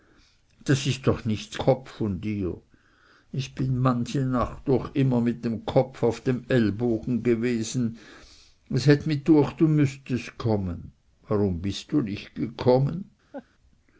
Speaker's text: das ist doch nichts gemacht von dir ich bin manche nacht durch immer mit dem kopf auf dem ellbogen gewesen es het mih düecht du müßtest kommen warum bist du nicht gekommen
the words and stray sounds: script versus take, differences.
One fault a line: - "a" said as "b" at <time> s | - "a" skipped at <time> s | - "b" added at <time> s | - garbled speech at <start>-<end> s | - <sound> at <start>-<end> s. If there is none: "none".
- "gemacht" said as "kopf" at 1.6 s
- laugh at 13.3-13.5 s